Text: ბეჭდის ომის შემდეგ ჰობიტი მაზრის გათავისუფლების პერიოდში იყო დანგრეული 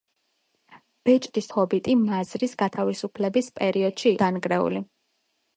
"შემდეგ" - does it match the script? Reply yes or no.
no